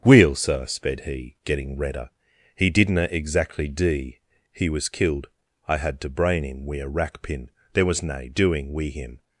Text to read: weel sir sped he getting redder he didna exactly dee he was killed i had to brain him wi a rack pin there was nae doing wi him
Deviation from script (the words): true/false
false